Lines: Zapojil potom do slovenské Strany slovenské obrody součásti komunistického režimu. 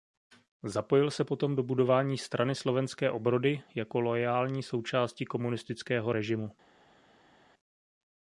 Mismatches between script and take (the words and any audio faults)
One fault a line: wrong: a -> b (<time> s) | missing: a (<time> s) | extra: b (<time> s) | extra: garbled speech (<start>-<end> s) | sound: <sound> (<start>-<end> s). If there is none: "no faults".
extra: se (1.1 s)
wrong: slovenské -> budování (1.6 s)
extra: jako loajální (3.8 s)